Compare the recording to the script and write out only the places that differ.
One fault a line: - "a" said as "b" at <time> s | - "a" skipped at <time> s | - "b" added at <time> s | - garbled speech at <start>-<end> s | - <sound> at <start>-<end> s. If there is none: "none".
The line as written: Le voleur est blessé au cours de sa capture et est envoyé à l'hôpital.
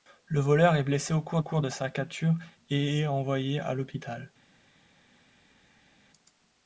- "cours" added at 1.4 s